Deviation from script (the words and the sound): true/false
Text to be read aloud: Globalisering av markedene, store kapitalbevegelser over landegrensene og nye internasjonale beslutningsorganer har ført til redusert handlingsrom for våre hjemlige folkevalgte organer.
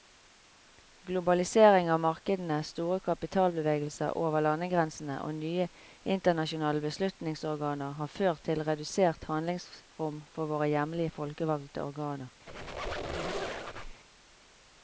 true